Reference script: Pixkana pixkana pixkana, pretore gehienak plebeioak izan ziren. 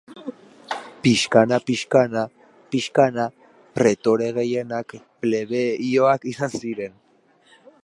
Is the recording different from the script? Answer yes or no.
no